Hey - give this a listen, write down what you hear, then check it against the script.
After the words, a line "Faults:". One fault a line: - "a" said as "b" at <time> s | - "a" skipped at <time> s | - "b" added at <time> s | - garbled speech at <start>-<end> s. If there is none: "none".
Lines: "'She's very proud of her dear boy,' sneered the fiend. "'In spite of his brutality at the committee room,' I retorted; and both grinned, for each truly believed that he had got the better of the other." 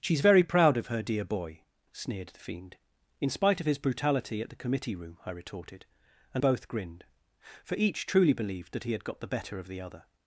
"'She's very proud of her dear boy,' sneered the fiend. "'In spite of his brutality at the committee room,' I retorted; and both grinned, for each truly believed that he had got the better of the other."
Faults:
none